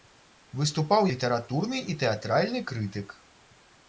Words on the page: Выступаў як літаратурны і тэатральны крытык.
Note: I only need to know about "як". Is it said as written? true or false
false